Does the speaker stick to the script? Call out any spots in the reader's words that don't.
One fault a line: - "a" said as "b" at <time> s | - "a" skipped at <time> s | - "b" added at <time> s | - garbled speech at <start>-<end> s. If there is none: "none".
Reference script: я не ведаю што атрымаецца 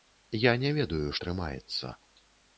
- "што" skipped at 1.1 s